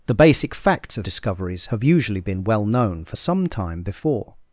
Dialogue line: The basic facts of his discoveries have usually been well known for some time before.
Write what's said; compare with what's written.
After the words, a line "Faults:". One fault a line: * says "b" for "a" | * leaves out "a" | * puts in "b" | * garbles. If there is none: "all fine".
The basic facts of discoveries have usually been well known for some time before.
Faults:
* leaves out "his"